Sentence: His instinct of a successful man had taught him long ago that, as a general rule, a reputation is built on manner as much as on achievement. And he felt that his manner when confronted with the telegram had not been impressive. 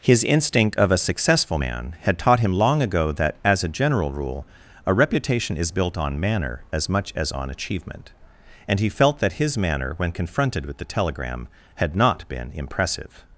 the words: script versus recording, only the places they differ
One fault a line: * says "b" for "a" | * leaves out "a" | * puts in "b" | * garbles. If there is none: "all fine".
all fine